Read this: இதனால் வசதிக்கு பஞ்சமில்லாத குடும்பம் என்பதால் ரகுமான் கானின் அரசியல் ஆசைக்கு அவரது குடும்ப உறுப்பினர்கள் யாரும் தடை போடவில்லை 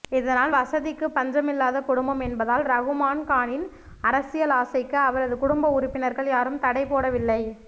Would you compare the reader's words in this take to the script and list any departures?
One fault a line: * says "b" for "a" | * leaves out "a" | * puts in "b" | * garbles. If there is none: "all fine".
all fine